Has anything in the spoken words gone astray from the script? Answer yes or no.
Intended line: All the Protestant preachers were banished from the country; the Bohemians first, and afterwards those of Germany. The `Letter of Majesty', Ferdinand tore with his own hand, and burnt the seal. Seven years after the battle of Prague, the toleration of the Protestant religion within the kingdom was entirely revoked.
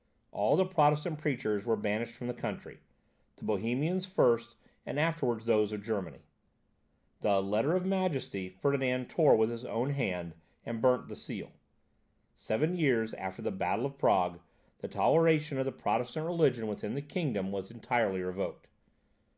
no